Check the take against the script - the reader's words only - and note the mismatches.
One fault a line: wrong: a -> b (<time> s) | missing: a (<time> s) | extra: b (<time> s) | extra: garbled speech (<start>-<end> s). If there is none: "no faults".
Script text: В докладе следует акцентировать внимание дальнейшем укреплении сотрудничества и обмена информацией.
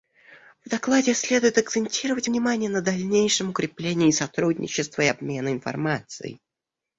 extra: на (2.7 s)